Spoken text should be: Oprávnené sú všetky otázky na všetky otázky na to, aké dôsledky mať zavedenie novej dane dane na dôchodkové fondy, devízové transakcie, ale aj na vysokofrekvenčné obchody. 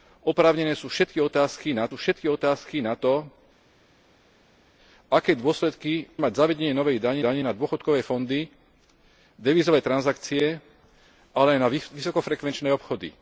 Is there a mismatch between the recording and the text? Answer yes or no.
no